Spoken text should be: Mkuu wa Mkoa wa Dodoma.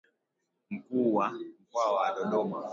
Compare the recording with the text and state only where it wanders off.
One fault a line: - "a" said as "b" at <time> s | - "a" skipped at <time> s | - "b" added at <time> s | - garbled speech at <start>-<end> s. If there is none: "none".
none